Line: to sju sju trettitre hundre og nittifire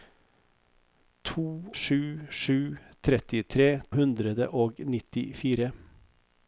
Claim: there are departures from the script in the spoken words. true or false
false